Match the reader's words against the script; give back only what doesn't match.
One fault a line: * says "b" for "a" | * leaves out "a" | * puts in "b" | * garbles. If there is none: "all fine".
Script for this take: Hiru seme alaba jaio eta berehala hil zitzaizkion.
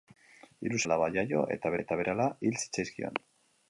* leaves out "seme"
* puts in "eta"